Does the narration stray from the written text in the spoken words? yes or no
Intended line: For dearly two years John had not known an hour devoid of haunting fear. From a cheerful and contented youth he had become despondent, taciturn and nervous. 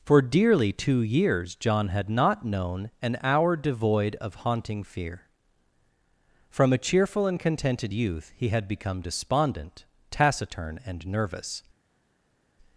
no